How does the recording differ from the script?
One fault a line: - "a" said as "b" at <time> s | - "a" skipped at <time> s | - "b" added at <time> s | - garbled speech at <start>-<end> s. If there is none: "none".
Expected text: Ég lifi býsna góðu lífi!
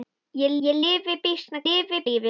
- "ég" added at 0.7 s
- "góðu" said as "lifi" at 1.7 s